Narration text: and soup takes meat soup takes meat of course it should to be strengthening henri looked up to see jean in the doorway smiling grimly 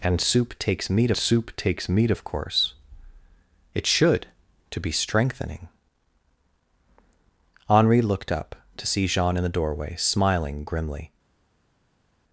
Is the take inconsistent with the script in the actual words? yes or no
no